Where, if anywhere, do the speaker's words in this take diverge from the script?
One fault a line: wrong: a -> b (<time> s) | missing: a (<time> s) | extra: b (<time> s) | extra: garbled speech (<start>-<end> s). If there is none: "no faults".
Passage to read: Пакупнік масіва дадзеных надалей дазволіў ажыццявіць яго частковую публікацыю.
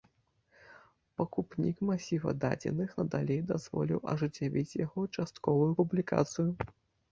no faults